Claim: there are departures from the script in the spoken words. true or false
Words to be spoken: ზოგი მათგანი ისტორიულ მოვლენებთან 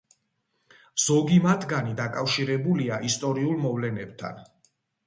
true